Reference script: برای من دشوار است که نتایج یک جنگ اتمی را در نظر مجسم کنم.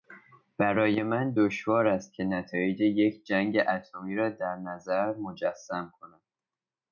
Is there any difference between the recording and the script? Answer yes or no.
no